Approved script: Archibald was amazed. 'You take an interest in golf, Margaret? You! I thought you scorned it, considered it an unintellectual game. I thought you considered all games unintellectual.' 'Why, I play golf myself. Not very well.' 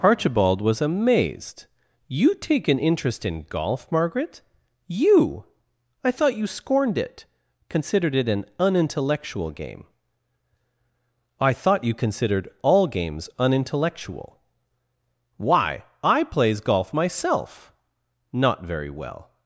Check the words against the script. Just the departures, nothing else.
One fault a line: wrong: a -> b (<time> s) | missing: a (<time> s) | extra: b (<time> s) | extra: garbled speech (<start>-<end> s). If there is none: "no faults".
wrong: play -> plays (16.2 s)